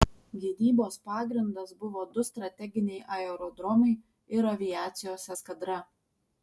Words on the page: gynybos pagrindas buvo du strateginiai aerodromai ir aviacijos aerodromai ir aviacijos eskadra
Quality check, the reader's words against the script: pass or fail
fail